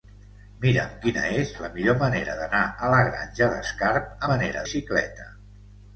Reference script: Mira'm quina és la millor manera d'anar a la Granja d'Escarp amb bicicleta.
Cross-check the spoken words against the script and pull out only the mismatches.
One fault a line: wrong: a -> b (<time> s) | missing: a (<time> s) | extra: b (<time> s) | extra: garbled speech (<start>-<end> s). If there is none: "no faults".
wrong: amb -> manera (4.3 s)